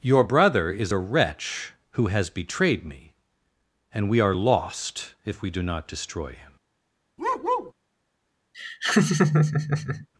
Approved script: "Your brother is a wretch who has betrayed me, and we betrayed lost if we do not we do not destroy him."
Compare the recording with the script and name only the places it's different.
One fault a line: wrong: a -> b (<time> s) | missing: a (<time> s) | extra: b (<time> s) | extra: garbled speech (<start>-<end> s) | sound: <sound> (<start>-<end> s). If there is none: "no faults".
wrong: betrayed -> are (4.2 s)
missing: we do not (5.9 s)
sound: bark (7.2-7.7 s)
sound: laugh (8.5-10.1 s)